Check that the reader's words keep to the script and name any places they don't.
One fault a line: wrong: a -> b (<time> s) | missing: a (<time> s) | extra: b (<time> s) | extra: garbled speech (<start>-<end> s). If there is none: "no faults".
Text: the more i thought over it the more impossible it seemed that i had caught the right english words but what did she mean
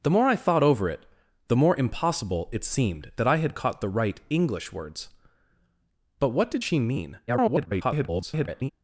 extra: garbled speech (7.3-8.7 s)